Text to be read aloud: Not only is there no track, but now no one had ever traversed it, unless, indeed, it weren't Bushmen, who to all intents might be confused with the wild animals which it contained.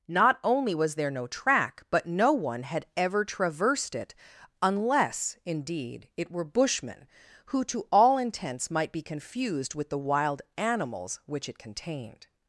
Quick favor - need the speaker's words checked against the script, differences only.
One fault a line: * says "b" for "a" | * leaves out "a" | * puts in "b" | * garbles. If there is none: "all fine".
* says "was" for "is"
* leaves out "now"
* says "were" for "weren't"